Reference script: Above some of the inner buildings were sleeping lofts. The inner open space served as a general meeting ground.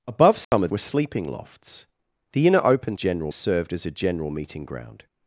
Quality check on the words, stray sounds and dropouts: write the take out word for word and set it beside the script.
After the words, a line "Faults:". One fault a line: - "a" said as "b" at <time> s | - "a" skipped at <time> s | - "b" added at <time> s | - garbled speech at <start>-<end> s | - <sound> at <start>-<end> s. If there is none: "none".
Above some of were sleeping lofts. The inner open general served as a general meeting ground.
Faults:
- dropout at 0.4-0.5 s
- "the inner buildings" skipped at 0.7 s
- "space" said as "general" at 2.9 s